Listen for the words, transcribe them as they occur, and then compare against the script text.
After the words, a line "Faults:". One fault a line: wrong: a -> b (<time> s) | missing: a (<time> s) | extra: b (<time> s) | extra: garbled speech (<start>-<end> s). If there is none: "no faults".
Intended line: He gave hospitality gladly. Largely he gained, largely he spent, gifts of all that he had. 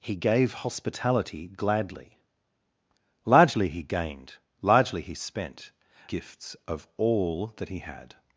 He gave hospitality gladly. Largely he gained, largely he spent, gifts of all that he had.
Faults:
no faults